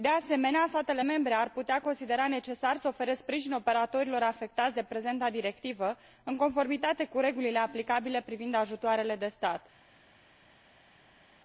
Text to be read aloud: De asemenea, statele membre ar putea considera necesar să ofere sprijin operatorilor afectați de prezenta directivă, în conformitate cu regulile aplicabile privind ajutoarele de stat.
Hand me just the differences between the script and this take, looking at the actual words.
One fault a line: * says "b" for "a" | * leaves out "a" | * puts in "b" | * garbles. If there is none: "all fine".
all fine